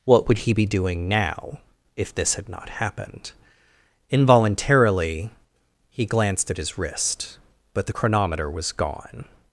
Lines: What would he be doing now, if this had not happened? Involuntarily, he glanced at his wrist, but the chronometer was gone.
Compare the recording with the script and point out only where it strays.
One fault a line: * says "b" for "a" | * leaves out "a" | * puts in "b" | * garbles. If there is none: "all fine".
all fine